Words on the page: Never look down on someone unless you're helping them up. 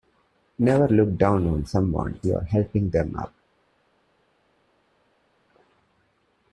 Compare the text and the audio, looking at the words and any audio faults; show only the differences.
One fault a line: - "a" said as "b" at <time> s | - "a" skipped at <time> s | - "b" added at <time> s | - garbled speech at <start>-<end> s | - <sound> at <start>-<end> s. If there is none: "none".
- "unless" skipped at 2.2 s